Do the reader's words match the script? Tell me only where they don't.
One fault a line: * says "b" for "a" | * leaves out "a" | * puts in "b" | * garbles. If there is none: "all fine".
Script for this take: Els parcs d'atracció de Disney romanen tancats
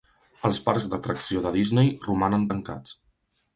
all fine